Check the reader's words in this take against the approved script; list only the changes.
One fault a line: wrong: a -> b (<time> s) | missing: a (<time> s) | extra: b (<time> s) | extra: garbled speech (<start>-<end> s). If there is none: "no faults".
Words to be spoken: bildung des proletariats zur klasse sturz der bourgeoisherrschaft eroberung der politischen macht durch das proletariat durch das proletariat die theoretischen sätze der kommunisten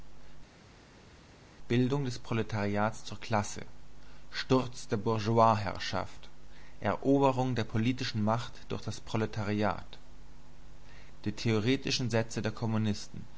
missing: durch das proletariat (10.0 s)